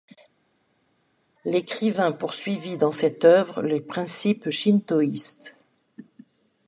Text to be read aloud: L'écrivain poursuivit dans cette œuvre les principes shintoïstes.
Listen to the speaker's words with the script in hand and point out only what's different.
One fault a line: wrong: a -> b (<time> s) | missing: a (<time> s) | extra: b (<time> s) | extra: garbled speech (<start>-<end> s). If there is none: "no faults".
no faults